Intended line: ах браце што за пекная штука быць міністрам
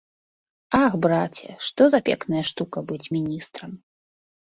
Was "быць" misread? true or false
false